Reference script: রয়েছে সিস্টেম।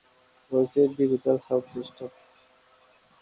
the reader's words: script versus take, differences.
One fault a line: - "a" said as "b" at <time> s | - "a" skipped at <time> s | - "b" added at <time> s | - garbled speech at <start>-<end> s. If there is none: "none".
- "ডিজিটাল সাউন্ড" added at 1.0 s